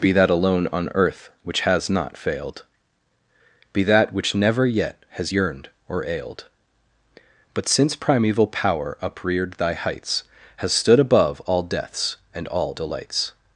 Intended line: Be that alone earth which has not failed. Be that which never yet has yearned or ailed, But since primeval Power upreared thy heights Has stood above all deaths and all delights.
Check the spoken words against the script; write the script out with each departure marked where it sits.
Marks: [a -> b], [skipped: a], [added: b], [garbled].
Be that alone [added: on] earth which has not failed. Be that which never yet has yearned or ailed, But since primeval Power upreared thy heights Has stood above all deaths and all delights.